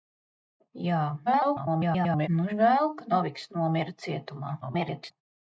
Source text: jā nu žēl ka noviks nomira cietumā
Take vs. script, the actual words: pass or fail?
fail